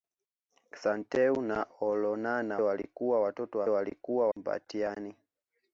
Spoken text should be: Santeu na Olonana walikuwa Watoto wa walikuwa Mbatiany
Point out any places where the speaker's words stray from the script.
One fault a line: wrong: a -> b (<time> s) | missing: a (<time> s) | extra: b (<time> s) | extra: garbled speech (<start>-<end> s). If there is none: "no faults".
no faults